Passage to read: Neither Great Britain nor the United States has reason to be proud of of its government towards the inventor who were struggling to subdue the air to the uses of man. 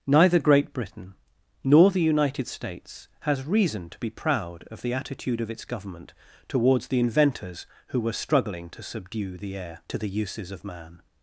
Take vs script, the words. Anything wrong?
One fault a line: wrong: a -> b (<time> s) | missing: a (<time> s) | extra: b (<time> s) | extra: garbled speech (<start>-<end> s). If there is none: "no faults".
extra: the attitude (4.8 s)
wrong: inventor -> inventors (7.0 s)